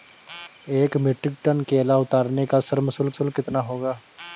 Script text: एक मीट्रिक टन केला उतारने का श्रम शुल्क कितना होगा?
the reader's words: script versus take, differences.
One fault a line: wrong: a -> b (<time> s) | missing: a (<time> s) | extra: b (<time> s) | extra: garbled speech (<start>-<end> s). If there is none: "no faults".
extra: शुल्क (3.1 s)